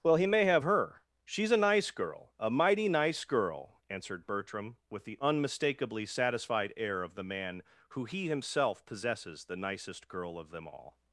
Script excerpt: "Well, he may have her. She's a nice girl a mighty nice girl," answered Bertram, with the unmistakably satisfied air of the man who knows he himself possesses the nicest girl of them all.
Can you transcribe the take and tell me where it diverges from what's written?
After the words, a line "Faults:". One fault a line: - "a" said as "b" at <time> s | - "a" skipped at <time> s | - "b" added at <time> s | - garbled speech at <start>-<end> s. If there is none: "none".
"Well, he may have her. She's a nice girl a mighty nice girl," answered Bertram, with the unmistakably satisfied air of the man who he himself possesses the nicest girl of them all.
Faults:
- "knows" skipped at 8.0 s